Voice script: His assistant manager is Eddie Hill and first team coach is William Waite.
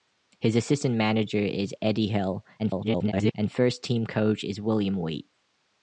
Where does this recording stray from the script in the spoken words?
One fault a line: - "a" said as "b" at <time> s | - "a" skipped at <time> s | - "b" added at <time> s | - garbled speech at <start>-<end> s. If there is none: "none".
- garbled speech at 2.6-3.3 s